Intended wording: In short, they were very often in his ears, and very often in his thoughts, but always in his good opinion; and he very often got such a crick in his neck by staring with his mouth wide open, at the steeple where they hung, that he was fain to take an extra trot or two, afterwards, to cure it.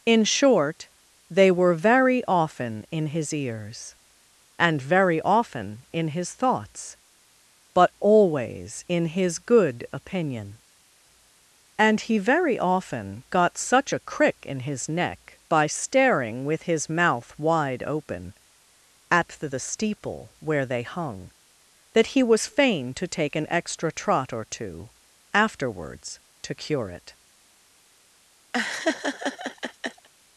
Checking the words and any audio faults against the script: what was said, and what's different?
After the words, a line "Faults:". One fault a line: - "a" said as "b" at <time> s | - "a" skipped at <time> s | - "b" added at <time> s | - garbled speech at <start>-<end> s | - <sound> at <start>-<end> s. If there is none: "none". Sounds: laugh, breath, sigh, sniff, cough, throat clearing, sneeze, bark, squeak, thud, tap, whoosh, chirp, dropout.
In short, they were very often in his ears, and very often in his thoughts, but always in his good opinion; and he very often got such a crick in his neck by staring with his mouth wide open, at the the steeple where they hung, that he was fain to take an extra trot or two, afterwards, to cure it.
Faults:
- "the" added at 19.5 s
- laugh at 28.5-30.1 s